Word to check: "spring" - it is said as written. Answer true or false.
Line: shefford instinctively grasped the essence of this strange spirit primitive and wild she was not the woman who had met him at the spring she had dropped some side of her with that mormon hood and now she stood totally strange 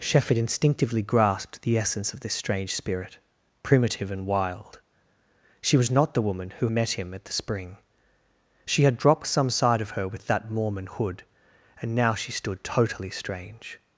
true